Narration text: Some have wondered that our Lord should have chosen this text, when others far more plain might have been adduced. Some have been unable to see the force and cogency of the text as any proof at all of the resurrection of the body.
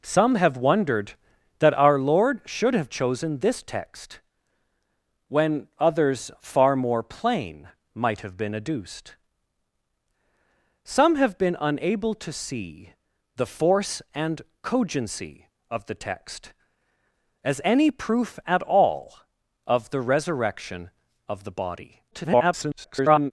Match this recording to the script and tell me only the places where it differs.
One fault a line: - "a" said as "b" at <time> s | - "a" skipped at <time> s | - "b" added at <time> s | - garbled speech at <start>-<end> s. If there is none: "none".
- garbled speech at 22.1-23.3 s